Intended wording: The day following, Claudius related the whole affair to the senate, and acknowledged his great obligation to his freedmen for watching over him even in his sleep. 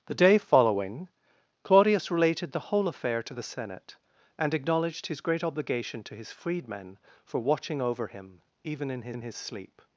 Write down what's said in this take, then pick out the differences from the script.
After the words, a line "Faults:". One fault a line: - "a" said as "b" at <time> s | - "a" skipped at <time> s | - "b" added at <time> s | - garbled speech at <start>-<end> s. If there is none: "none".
The day following, Claudius related the whole affair to the senate, and acknowledged his great obligation to his freedmen for watching over him even in his in his sleep.
Faults:
- "in his" added at 9.1 s